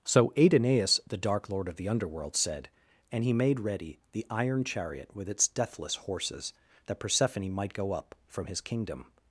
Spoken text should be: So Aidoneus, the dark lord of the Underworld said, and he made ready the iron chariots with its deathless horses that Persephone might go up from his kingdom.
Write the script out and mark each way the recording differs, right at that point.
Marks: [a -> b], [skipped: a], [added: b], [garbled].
So Aidoneus, the dark lord of the Underworld said, and he made ready the iron [chariots -> chariot] with its deathless horses that Persephone might go up from his kingdom.